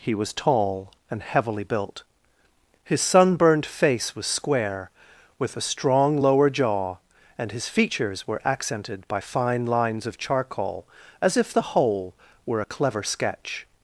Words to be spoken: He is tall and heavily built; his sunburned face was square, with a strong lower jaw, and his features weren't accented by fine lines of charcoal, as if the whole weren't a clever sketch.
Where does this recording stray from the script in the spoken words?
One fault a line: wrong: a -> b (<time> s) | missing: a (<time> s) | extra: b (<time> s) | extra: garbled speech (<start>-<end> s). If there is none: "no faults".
wrong: is -> was (0.1 s)
wrong: weren't -> were (8.2 s)
wrong: weren't -> were (12.4 s)